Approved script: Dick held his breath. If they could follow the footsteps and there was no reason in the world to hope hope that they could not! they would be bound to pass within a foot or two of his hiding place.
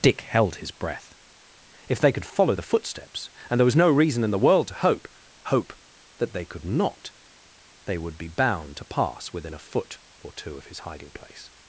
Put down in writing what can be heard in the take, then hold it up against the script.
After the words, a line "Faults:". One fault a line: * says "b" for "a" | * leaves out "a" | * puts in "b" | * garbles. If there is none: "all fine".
Dick held his breath. If they could follow the footsteps and there was no reason in the world to hope hope that they could not! they would be bound to pass within a foot or two of his hiding place.
Faults:
all fine